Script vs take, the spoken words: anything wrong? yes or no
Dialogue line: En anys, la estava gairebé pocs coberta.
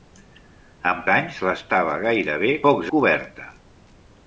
no